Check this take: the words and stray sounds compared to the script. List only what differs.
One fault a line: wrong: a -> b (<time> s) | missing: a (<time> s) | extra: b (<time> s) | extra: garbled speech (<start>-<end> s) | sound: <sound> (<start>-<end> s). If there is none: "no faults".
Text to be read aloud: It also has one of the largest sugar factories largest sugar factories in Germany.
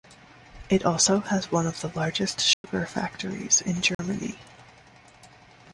sound: dropout (2.5-2.6 s)
missing: largest sugar factories (3.6 s)
sound: dropout (3.9-4.0 s)